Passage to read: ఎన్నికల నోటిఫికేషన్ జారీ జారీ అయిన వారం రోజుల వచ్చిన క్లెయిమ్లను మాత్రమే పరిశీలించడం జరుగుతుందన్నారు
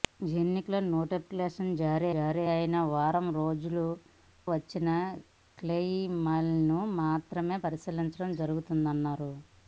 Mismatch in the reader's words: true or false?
false